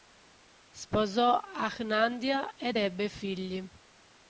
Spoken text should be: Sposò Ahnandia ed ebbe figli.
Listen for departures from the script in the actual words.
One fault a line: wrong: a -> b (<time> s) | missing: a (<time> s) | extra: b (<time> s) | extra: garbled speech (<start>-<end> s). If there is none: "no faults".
no faults